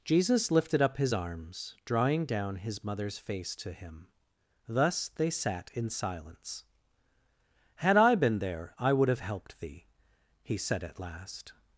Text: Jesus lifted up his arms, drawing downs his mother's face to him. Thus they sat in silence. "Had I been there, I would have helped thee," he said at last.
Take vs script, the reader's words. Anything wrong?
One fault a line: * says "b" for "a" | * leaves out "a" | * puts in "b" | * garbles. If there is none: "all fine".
* says "down" for "downs"